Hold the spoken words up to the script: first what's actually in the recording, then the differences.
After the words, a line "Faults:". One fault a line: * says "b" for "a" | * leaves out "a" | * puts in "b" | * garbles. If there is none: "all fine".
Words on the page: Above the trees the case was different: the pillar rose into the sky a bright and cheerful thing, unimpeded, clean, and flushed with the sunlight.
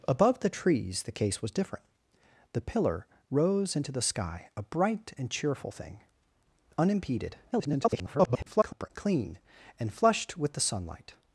Above the trees the case was different: the pillar rose into the sky a bright and cheerful thing, unimpeded, [garbled] clean, and flushed with the sunlight.
Faults:
* garbles